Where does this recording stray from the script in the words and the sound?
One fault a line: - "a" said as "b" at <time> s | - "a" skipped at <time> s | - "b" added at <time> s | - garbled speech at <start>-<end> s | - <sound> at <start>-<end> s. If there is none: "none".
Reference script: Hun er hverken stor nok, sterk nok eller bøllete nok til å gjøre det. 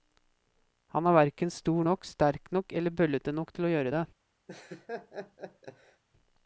- "Hun" said as "Han" at 0.9 s
- laugh at 4.5-6.0 s